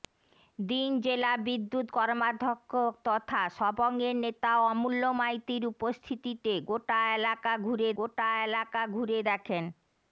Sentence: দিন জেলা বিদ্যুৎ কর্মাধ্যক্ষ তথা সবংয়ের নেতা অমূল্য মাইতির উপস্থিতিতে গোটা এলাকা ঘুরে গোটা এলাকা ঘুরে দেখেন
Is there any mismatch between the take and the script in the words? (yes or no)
no